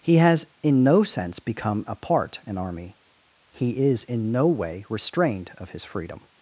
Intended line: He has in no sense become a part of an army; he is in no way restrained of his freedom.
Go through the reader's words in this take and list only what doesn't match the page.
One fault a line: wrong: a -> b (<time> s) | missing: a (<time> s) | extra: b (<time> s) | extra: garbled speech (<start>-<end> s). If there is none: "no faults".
missing: of (2.4 s)